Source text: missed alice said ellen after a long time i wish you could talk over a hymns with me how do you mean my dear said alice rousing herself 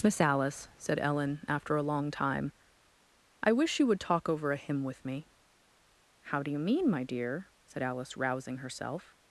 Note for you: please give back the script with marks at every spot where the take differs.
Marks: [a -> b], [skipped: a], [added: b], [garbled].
[missed -> miss] alice said ellen after a long time i wish you [could -> would] talk over a [hymns -> hymn] with me how do you mean my dear said alice rousing herself